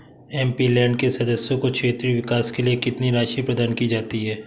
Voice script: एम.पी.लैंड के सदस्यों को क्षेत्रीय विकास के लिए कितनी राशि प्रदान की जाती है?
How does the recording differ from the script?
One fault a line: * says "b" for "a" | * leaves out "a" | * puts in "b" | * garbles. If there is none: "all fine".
all fine